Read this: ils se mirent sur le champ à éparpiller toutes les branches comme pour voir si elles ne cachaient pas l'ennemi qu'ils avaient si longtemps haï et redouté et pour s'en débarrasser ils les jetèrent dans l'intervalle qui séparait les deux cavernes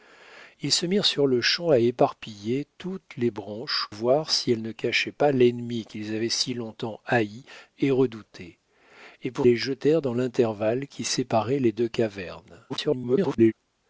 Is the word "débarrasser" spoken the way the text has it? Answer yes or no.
no